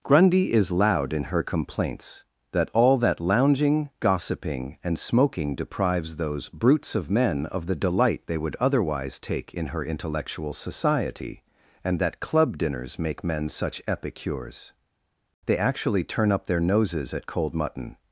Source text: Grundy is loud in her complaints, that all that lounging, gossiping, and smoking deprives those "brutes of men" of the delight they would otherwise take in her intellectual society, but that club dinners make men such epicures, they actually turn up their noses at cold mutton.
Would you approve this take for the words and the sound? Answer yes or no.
no